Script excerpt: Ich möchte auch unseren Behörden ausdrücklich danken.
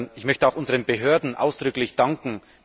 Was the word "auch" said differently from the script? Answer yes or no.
no